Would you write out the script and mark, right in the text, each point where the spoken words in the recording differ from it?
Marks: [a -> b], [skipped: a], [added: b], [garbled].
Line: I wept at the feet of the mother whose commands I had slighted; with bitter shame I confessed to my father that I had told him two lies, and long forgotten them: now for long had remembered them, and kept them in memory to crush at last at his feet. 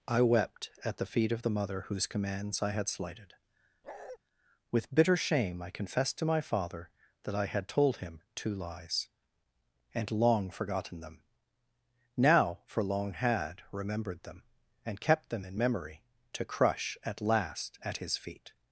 I wept at the feet of the mother whose commands I had slighted; with bitter shame I confessed to my father that I had told him two lies, and long forgotten them: now for long had remembered them, and kept them in memory to crush at last at his feet.